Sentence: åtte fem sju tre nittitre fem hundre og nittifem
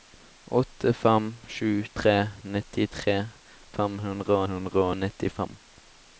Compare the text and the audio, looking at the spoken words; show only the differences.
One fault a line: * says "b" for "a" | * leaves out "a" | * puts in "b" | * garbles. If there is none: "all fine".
* puts in "hundre"